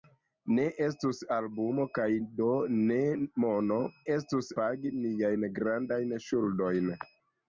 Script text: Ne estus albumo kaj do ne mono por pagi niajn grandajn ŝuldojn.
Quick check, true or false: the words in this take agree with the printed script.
false